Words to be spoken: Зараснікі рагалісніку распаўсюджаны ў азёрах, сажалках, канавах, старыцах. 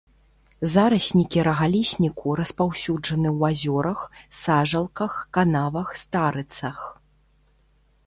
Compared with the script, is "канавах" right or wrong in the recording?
right